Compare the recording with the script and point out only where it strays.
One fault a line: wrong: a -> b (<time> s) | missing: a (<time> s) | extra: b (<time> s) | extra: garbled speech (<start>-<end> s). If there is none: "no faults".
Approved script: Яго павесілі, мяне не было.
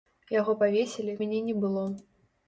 no faults